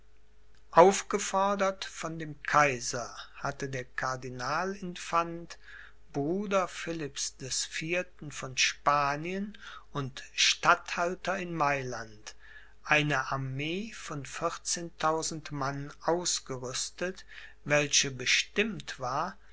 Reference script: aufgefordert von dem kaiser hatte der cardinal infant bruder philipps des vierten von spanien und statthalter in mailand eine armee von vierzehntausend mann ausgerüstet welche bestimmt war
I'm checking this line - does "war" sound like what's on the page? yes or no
yes